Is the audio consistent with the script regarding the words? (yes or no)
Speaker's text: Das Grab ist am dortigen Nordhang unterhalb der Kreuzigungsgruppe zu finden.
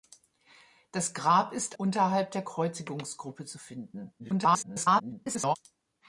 no